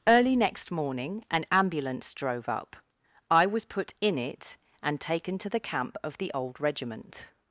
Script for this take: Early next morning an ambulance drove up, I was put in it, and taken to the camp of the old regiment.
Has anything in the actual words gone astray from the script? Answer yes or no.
no